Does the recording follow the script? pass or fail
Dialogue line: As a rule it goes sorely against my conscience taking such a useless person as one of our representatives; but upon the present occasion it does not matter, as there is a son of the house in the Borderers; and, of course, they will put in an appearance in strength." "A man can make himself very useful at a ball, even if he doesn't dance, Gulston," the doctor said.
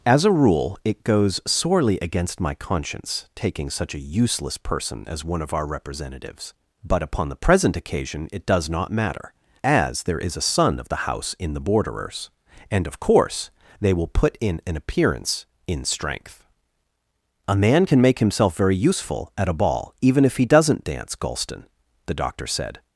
pass